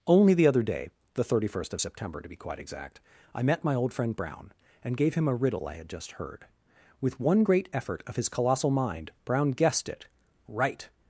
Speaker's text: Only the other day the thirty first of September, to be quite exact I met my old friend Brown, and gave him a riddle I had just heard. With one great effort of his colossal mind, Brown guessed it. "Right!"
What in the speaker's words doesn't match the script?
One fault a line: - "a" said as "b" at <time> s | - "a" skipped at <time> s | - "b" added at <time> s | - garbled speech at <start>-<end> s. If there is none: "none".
none